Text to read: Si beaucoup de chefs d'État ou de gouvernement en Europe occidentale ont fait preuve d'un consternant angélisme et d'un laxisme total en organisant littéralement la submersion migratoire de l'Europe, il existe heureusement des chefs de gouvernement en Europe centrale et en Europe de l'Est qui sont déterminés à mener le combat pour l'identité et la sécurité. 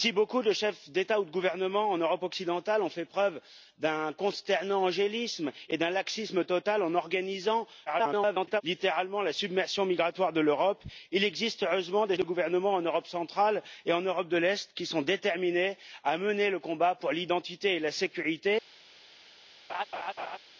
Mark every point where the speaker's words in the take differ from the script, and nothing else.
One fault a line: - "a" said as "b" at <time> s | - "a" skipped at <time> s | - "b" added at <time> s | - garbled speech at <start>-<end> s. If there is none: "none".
- garbled speech at 7.9-8.6 s
- "chefs" skipped at 12.2 s